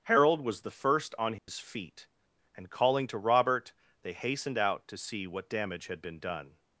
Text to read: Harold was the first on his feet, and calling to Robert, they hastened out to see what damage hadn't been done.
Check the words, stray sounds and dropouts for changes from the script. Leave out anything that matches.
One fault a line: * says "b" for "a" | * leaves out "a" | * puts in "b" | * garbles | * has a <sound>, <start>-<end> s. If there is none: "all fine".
* has a dropout, 1.4-1.5 s
* says "had" for "hadn't"